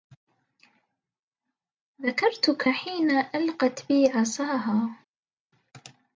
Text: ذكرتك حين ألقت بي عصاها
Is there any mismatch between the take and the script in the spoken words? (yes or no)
no